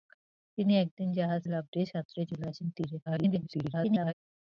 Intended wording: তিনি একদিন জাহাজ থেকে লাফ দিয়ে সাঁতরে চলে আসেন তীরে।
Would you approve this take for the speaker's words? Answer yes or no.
no